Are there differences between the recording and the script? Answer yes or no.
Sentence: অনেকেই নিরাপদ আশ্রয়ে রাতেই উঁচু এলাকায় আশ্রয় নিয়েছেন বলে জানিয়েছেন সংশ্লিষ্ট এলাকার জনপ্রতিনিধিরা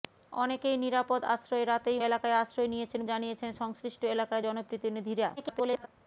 yes